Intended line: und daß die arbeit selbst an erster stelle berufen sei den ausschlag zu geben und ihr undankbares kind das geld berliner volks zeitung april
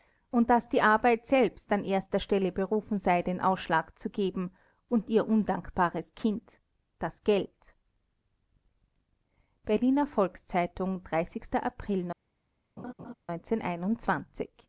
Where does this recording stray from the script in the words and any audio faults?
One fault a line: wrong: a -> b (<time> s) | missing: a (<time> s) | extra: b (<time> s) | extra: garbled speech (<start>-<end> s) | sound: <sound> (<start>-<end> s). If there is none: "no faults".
sound: laugh (12.8-13.1 s)